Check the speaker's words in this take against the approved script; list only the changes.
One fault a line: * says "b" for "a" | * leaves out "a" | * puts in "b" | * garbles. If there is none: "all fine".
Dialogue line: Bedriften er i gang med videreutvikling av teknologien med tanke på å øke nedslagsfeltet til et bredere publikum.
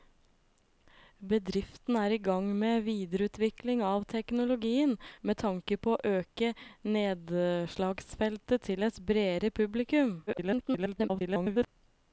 * garbles